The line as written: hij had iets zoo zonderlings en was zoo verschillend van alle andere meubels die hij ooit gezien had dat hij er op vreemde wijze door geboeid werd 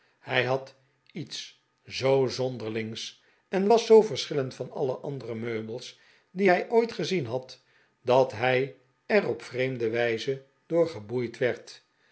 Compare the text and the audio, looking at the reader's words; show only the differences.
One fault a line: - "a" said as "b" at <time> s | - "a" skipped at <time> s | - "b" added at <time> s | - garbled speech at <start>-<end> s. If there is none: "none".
none